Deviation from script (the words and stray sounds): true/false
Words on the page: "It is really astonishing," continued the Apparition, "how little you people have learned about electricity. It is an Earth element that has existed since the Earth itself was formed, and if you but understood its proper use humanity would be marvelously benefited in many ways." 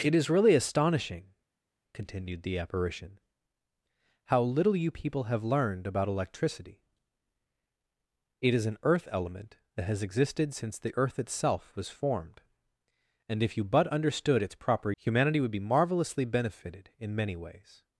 true